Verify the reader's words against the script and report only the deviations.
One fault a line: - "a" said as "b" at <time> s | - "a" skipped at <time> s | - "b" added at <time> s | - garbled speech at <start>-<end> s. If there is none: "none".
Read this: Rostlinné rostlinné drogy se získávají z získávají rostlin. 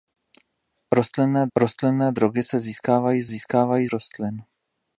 none